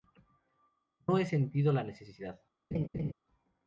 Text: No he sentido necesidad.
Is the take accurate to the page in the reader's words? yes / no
no